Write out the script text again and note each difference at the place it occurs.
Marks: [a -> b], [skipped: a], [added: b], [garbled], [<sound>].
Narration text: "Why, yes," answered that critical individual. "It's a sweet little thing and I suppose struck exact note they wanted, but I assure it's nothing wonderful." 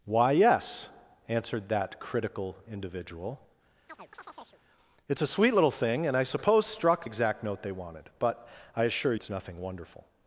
"Why, yes," answered that critical individual. [chirp] "It's a sweet little thing and I suppose struck exact note they wanted, but I assure it's nothing wonderful."